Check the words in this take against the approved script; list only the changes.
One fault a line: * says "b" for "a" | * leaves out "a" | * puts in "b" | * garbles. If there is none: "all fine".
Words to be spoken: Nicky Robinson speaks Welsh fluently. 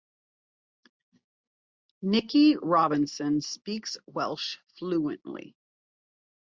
all fine